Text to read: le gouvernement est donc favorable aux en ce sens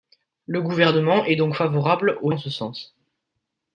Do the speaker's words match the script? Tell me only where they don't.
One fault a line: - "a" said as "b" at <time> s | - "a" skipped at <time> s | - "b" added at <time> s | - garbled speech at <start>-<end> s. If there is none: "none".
none